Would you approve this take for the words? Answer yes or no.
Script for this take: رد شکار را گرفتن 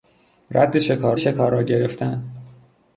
no